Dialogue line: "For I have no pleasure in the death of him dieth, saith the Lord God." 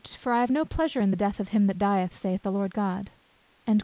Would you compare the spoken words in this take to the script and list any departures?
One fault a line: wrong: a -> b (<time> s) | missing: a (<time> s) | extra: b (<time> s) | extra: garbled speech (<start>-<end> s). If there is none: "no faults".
extra: that (1.7 s)